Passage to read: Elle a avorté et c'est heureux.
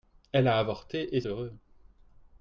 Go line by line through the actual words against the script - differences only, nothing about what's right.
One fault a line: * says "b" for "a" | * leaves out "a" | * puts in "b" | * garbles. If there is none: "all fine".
* leaves out "c'est"